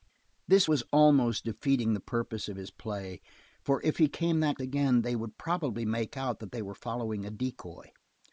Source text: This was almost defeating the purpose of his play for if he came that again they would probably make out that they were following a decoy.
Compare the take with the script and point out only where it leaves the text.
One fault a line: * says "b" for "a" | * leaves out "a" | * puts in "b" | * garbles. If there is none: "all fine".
all fine